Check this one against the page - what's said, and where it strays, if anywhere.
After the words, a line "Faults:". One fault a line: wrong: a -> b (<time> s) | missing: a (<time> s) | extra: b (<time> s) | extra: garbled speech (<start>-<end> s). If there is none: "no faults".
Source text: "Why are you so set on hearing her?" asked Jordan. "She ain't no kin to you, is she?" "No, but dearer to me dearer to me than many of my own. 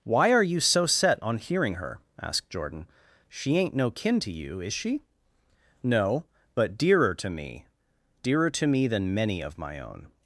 "Why are you so set on hearing her?" asked Jordan. "She ain't no kin to you, is she?" "No, but dearer to me dearer to me than many of my own.
Faults:
no faults